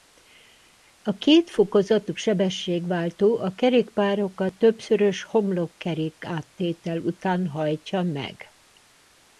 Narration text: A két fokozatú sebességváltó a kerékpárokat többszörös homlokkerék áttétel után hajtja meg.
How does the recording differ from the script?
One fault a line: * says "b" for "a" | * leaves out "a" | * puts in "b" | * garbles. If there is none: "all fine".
all fine